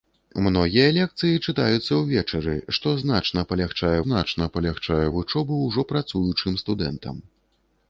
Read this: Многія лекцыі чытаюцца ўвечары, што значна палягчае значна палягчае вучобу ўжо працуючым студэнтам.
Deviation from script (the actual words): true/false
false